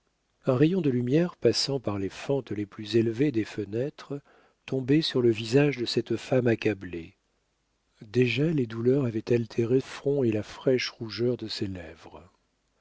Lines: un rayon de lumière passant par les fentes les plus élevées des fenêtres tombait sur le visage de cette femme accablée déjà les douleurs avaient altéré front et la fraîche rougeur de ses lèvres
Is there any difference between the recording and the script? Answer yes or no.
no